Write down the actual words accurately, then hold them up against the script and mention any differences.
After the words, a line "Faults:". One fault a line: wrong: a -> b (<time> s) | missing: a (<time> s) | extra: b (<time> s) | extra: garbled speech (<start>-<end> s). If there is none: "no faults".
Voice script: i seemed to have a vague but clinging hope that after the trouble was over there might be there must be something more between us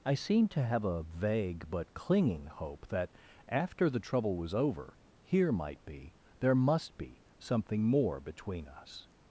i seemed to have a vague but clinging hope that after the trouble was over here might be there must be something more between us
Faults:
wrong: there -> here (5.2 s)